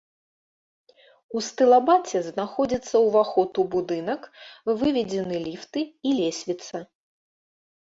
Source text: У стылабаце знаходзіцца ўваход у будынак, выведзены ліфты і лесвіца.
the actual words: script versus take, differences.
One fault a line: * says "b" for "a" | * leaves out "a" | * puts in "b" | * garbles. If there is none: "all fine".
all fine